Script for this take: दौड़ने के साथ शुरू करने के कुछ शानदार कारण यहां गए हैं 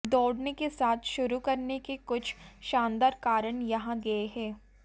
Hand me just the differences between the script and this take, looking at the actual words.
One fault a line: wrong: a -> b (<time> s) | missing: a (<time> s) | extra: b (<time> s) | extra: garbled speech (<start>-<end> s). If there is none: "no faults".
no faults